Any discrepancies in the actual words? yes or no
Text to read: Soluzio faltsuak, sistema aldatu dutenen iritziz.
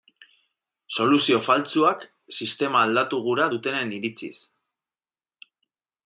yes